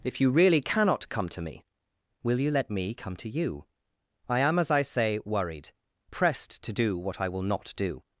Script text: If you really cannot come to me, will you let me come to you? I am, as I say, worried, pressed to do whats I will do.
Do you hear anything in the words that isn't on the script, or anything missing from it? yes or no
yes